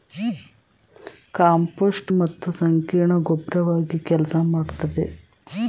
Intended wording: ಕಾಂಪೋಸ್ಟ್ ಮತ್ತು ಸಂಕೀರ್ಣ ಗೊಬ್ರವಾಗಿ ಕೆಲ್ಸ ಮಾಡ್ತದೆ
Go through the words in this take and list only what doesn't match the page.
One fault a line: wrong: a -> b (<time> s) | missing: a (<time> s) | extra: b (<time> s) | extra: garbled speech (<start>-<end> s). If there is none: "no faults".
no faults